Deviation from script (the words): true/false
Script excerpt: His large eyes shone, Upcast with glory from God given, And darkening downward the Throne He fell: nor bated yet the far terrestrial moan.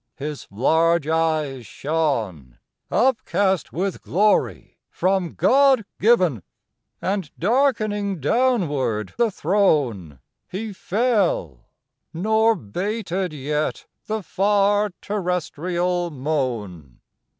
false